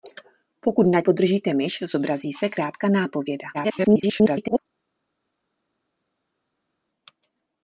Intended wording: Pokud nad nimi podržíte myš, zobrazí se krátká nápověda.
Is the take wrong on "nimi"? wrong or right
wrong